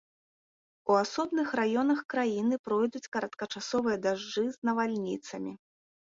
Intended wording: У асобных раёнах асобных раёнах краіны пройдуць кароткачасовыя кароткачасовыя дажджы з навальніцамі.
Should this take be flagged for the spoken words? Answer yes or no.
yes